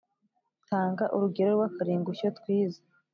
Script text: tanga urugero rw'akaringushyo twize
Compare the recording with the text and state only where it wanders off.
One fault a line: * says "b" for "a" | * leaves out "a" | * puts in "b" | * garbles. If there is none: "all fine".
all fine